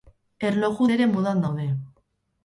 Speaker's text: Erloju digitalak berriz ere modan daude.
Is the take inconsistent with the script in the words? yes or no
yes